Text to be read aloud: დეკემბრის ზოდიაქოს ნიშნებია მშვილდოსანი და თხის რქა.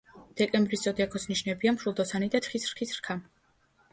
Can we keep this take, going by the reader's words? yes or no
no